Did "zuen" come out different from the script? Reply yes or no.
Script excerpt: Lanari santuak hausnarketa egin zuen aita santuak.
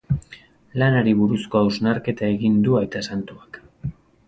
yes